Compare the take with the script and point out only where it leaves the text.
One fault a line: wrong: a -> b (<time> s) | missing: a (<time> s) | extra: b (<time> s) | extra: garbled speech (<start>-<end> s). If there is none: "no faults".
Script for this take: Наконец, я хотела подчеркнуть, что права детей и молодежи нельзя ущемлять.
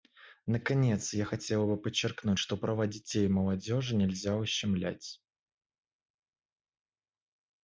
extra: бы (1.7 s)